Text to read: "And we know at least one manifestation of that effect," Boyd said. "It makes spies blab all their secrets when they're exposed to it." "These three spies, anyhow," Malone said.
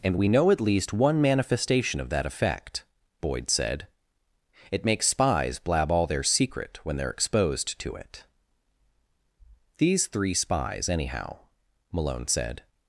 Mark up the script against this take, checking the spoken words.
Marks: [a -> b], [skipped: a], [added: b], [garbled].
"And we know at least one manifestation of that effect," Boyd said. "It makes spies blab all their [secrets -> secret] when they're exposed to it." "These three spies, anyhow," Malone said.